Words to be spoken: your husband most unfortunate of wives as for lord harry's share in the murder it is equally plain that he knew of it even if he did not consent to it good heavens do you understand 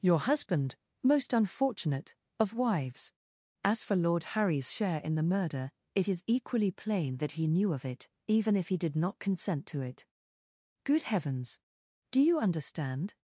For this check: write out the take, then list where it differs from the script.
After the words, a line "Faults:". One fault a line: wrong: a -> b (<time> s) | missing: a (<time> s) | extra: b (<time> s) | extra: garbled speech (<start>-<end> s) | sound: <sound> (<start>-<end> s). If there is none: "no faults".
your husband most unfortunate of wives as for lord harry's share in the murder it is equally plain that he knew of it even if he did not consent to it good heavens do you understand
Faults:
no faults